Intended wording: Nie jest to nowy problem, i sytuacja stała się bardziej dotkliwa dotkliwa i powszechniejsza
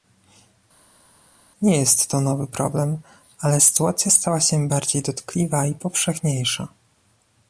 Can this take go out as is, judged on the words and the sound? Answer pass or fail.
fail